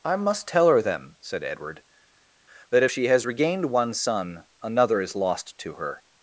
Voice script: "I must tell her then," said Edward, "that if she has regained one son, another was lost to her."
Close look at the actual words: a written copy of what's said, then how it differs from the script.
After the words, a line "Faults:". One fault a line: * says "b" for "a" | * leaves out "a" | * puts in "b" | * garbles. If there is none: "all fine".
"I must tell her then," said Edward, "that if she has regained one son, another is lost to her."
Faults:
* says "is" for "was"